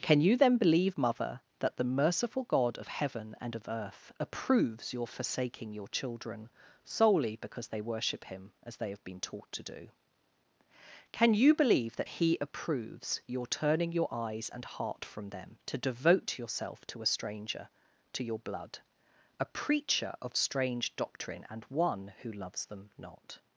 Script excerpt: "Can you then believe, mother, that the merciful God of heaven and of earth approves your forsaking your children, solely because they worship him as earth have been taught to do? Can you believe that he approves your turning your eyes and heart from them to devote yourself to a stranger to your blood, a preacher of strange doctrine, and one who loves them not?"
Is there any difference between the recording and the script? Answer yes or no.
yes